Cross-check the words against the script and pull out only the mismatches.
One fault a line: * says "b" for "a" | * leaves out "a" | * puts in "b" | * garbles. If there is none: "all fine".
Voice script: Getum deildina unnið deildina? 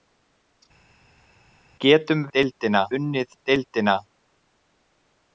all fine